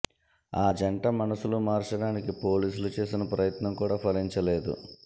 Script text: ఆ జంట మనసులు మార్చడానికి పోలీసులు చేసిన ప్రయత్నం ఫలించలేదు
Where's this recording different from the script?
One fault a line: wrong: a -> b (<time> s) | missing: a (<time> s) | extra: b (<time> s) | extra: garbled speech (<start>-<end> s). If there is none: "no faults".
extra: కూడా (3.7 s)